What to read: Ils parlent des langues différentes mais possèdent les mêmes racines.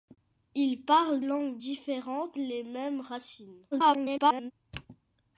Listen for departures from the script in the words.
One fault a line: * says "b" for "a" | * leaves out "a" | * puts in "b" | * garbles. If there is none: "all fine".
* leaves out "des"
* leaves out "mais possèdent"
* garbles